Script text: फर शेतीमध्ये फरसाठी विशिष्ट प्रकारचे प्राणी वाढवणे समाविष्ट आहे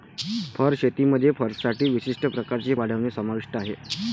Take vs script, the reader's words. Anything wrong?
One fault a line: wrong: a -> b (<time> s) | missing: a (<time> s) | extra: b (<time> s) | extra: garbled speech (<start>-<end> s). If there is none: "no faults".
missing: प्राणी (2.7 s)